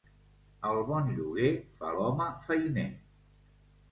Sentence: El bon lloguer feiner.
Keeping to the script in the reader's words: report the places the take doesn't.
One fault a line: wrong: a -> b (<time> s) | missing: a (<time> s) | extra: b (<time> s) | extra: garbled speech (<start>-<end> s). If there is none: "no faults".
extra: fa l'home (1.8 s)